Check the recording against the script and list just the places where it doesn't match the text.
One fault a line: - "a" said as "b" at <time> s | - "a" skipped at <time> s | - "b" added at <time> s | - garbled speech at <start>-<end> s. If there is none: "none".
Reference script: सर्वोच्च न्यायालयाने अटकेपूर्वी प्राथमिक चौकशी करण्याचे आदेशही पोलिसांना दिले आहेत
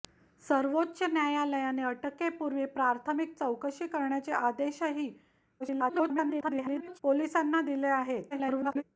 - garbled speech at 5.6-7.0 s
- garbled speech at 8.3-8.8 s